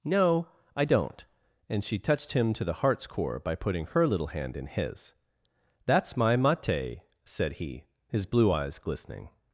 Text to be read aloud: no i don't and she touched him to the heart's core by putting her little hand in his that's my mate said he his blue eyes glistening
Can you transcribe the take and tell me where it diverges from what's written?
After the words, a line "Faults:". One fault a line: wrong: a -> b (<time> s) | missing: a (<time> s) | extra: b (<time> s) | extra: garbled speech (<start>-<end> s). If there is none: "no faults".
no i don't and she touched him to the heart's core by putting her little hand in his that's my mate said he his blue eyes glistening
Faults:
no faults